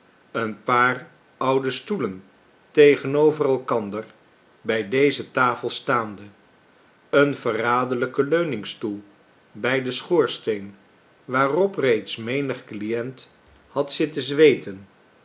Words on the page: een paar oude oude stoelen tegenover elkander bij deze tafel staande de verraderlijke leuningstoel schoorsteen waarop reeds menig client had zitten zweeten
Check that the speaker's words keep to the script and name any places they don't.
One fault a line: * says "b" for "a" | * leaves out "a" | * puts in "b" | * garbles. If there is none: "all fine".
* leaves out "oude"
* says "een" for "de"
* puts in "bij den"